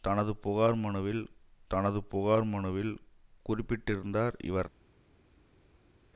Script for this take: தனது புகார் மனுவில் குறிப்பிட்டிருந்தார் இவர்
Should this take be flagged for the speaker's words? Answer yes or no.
yes